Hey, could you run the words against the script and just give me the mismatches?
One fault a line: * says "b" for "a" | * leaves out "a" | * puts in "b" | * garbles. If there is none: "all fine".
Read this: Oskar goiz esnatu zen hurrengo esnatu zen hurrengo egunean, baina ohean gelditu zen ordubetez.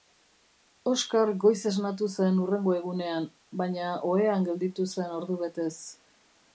* leaves out "esnatu zen hurrengo"